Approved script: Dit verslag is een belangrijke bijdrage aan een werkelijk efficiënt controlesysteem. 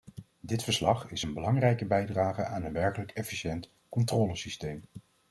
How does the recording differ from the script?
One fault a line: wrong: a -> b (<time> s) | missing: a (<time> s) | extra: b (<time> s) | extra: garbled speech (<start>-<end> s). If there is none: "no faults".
no faults